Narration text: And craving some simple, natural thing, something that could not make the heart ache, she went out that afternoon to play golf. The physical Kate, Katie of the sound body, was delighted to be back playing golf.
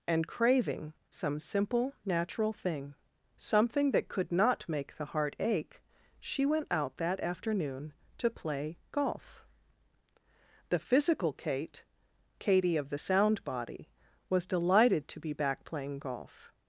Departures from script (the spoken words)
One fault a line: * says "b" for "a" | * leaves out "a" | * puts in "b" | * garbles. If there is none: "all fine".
all fine